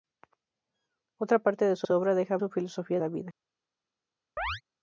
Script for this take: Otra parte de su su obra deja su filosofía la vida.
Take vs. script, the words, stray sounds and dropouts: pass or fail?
fail